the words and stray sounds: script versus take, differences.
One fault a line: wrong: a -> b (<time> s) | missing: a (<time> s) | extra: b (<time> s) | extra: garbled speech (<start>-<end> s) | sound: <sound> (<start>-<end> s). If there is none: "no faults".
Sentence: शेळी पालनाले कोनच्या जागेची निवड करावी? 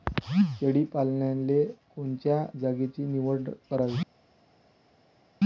no faults